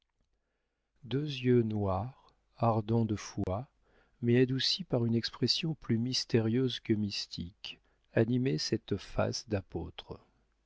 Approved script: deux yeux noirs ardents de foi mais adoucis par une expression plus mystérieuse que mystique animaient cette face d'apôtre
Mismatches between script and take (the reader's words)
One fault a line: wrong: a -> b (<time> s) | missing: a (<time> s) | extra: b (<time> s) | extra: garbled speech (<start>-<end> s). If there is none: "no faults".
no faults